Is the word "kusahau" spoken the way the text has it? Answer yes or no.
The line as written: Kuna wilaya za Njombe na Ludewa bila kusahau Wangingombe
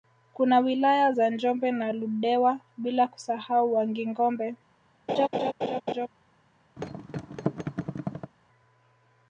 yes